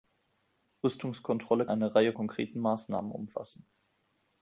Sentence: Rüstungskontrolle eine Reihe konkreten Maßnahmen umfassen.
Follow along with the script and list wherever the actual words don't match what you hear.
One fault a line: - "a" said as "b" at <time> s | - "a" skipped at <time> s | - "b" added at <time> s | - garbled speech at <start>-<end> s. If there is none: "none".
none